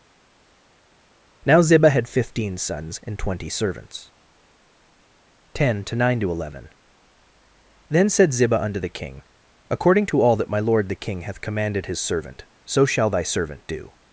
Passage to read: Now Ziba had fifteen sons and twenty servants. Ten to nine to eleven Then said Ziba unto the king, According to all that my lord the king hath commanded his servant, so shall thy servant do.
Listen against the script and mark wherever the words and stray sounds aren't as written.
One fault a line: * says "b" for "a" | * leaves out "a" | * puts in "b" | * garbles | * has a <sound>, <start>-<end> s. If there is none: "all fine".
all fine